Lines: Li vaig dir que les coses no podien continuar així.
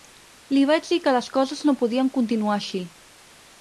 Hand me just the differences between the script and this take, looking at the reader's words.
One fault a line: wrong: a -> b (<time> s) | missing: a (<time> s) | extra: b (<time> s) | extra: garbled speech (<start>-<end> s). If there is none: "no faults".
no faults